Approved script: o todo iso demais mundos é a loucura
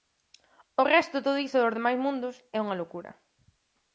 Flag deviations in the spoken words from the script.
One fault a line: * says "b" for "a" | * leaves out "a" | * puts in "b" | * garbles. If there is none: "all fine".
* puts in "resto"
* puts in "dos"
* says "unha" for "a"